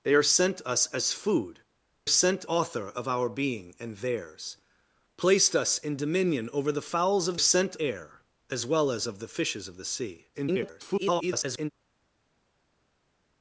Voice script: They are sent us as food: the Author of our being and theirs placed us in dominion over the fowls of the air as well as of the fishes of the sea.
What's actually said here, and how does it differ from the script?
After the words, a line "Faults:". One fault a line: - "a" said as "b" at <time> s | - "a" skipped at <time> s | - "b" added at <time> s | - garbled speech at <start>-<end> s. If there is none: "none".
They are sent us as food: sent Author of our being and theirs placed us in dominion over the fowls of sent air as well as of the fishes of the sea. [garbled]
Faults:
- "the" said as "sent" at 2.1 s
- "the" said as "sent" at 7.4 s
- garbled speech at 10.3-11.7 s